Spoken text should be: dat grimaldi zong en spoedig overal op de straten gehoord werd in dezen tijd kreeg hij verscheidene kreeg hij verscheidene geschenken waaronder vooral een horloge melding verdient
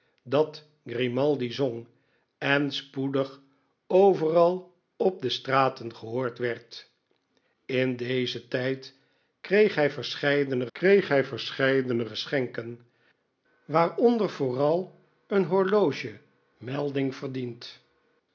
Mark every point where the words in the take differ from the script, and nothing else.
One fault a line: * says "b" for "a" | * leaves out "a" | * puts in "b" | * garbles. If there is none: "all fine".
all fine